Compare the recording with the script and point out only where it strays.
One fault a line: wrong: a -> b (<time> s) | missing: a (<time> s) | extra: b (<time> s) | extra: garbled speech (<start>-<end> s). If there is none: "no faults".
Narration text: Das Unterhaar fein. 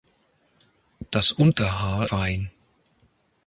no faults